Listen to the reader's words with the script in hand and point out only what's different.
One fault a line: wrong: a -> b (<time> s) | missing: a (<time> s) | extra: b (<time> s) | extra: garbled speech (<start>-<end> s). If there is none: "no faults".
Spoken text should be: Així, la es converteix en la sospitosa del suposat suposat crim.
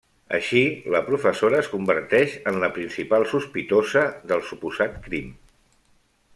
extra: professora (1.1 s)
extra: principal (2.8 s)
missing: suposat (5.0 s)